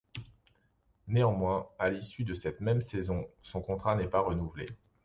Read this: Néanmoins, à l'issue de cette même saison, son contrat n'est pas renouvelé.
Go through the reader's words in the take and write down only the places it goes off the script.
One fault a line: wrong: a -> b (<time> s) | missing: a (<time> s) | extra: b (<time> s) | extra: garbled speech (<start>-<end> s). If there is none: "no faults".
no faults